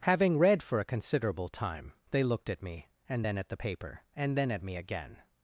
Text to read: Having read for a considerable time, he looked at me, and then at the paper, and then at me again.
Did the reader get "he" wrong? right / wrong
wrong